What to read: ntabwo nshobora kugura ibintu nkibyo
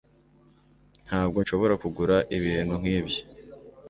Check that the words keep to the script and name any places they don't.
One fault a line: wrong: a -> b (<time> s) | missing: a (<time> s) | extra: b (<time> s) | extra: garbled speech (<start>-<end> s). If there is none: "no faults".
no faults